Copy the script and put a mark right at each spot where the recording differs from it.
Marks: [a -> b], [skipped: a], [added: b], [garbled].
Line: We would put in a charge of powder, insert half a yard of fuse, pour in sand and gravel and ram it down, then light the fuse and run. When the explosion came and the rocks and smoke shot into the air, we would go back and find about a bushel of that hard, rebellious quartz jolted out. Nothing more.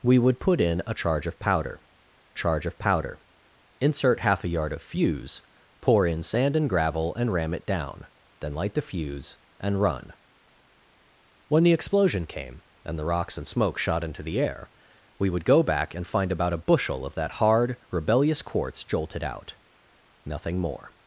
We would put in a charge of powder, [added: charge of powder] insert half a yard of fuse, pour in sand and gravel and ram it down, then light the fuse and run. When the explosion came and the rocks and smoke shot into the air, we would go back and find about a bushel of that hard, rebellious quartz jolted out. Nothing more.